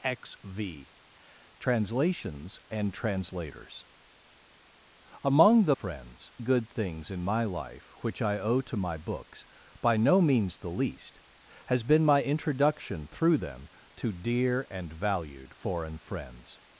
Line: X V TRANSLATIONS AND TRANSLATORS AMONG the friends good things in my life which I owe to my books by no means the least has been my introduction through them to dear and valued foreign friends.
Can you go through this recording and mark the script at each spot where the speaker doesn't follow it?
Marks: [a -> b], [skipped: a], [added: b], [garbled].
X V TRANSLATIONS AND TRANSLATORS AMONG the friends good things in my life which I owe to my books by no means the least has been my introduction through them to dear and valued foreign friends.